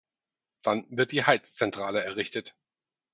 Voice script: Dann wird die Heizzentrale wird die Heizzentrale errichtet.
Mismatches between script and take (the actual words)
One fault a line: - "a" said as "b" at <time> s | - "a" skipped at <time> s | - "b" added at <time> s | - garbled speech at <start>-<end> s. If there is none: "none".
- "wird die Heizzentrale" skipped at 2.0 s